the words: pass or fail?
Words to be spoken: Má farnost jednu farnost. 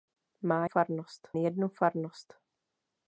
pass